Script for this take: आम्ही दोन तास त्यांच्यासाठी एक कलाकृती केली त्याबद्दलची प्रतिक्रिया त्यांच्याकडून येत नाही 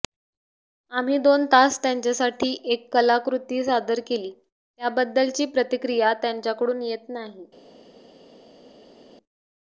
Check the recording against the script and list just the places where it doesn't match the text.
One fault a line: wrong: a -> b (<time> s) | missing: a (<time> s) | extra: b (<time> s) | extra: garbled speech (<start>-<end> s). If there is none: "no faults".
extra: सादर (3.6 s)